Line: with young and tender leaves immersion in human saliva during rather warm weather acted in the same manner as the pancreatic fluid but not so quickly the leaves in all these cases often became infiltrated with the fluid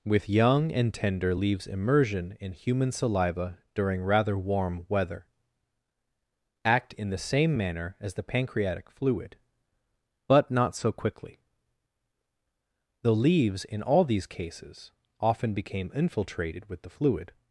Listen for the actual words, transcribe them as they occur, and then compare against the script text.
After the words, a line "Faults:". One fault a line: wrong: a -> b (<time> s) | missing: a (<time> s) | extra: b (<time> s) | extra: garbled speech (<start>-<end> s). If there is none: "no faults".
with young and tender leaves immersion in human saliva during rather warm weather act in the same manner as the pancreatic fluid but not so quickly the leaves in all these cases often became infiltrated with the fluid
Faults:
wrong: acted -> act (6.6 s)